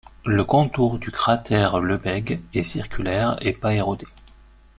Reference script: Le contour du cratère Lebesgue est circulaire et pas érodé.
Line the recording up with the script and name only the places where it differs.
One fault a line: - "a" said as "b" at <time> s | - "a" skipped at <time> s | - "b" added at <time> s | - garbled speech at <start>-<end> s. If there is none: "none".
none